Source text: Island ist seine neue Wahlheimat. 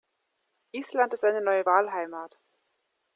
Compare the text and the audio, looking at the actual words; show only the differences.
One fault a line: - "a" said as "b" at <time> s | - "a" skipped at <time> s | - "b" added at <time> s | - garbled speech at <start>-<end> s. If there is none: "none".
none